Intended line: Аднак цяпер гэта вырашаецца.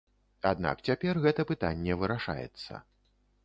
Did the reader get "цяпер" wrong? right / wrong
right